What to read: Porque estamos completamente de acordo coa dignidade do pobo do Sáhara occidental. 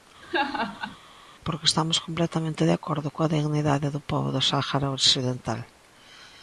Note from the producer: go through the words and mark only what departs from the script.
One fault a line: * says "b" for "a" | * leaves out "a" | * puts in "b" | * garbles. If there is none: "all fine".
all fine